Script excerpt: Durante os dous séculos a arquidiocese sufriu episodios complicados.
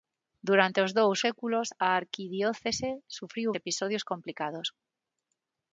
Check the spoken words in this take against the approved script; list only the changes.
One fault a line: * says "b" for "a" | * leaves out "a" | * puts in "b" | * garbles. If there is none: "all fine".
all fine